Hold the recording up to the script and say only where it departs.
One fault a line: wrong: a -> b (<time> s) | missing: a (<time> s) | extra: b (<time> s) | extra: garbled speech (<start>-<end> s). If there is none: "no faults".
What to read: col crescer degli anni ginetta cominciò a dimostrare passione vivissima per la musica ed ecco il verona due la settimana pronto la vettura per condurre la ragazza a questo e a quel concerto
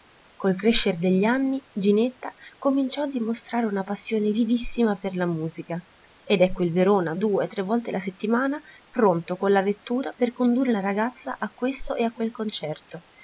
extra: una (3.7 s)
extra: tre volte (7.5 s)
extra: con (9.4 s)